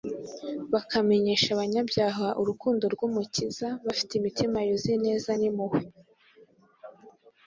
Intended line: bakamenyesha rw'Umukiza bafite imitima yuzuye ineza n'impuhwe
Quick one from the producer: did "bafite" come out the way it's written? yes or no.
yes